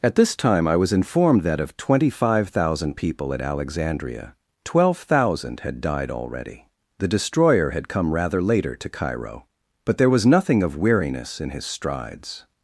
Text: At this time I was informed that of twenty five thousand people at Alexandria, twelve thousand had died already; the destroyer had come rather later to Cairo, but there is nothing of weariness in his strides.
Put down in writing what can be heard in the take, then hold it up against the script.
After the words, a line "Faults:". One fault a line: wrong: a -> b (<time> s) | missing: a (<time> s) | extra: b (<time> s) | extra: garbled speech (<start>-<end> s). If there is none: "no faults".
At this time I was informed that of twenty five thousand people at Alexandria, twelve thousand had died already; the destroyer had come rather later to Cairo, but there was nothing of weariness in his strides.
Faults:
wrong: is -> was (10.1 s)